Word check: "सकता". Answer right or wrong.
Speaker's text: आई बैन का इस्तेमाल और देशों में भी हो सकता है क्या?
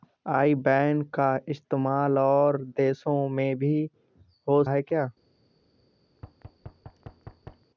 wrong